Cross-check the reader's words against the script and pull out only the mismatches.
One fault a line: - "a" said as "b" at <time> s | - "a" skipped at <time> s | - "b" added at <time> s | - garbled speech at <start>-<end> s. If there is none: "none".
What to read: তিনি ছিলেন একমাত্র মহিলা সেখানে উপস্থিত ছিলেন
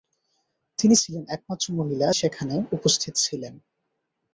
none